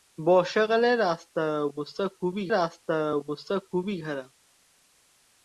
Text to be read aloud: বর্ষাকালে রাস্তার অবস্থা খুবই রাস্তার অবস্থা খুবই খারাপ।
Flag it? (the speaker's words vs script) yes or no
no